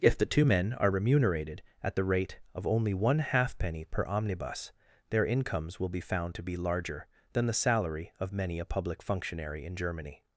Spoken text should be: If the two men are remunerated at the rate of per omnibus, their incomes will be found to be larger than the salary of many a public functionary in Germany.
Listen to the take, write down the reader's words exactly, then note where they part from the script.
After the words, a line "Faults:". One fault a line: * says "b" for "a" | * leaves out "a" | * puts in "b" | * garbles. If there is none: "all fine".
If the two men are remunerated at the rate of only one halfpenny per omnibus, their incomes will be found to be larger than the salary of many a public functionary in Germany.
Faults:
* puts in "only one halfpenny"